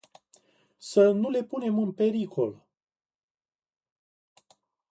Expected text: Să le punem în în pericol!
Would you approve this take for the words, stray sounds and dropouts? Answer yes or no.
no